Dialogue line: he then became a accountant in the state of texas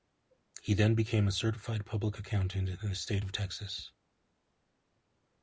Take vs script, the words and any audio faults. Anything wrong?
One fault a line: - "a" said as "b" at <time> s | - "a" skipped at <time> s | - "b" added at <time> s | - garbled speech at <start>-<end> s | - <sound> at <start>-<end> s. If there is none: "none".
- "certified public" added at 1.3 s